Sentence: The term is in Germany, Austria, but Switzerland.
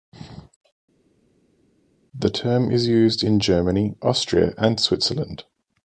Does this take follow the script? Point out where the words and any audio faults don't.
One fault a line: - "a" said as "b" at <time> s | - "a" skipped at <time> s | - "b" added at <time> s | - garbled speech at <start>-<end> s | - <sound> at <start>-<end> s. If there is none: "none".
- "used" added at 2.9 s
- "but" said as "and" at 4.6 s